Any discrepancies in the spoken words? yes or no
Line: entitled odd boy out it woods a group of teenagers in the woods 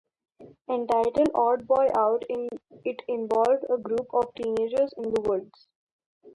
yes